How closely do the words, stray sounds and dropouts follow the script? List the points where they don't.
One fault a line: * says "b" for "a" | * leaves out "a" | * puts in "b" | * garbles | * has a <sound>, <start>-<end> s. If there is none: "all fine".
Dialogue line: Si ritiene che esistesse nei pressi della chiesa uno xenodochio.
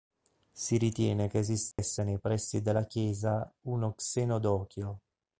* has a dropout, 1.7-1.8 s